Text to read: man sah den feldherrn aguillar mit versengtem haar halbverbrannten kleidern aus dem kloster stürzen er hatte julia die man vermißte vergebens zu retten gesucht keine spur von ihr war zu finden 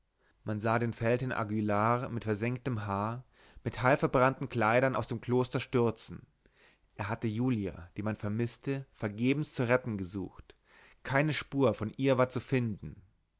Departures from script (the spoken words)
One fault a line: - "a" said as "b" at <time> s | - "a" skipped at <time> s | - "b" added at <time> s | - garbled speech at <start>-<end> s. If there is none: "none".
- "mit" added at 3.7 s